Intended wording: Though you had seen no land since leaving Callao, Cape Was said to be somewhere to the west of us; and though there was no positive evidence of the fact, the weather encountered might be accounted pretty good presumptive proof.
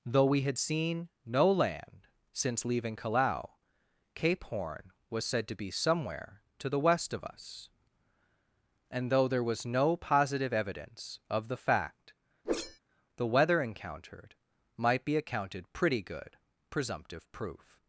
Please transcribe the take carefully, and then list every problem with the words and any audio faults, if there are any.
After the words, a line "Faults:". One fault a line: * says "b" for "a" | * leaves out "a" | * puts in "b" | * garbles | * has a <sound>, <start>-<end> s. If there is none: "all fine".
Though we had seen no land since leaving Callao, Cape Horn was said to be somewhere to the west of us; and though there was no positive evidence of the fact, the weather encountered might be accounted pretty good presumptive proof.
Faults:
* says "we" for "you"
* puts in "Horn"
* has a whoosh, 12.4-12.8 s